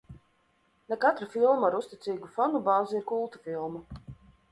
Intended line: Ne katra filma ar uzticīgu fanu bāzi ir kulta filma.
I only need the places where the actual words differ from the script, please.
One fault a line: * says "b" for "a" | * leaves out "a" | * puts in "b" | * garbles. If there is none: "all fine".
all fine